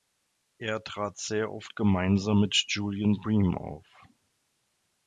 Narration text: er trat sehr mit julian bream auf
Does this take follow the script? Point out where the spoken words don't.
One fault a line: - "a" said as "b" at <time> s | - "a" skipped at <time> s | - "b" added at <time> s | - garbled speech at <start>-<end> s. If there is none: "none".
- "oft gemeinsam" added at 1.5 s